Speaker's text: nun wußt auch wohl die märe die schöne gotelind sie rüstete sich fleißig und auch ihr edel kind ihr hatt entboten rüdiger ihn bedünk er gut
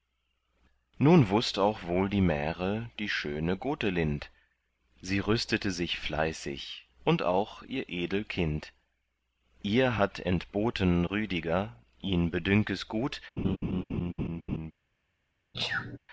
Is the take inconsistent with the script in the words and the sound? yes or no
yes